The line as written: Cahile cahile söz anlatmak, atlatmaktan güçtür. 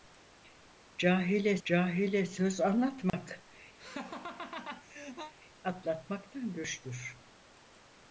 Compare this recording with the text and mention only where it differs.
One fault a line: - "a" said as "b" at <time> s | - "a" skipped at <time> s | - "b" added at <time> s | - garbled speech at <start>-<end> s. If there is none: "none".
none